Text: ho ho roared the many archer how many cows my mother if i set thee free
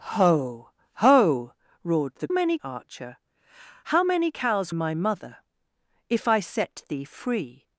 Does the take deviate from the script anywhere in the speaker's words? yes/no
no